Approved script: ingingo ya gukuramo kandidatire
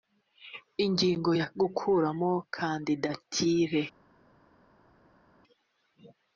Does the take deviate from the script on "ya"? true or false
false